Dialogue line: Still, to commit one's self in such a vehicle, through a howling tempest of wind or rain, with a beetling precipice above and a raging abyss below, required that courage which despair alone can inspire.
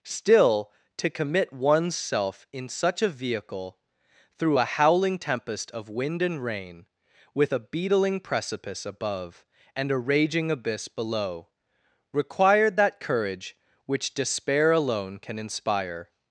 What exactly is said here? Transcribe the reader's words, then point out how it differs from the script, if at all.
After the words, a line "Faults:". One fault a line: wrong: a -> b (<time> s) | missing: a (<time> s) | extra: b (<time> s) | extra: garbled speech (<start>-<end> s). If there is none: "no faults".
Still, to commit one's self in such a vehicle, through a howling tempest of wind and rain, with a beetling precipice above and a raging abyss below, required that courage which despair alone can inspire.
Faults:
wrong: or -> and (6.2 s)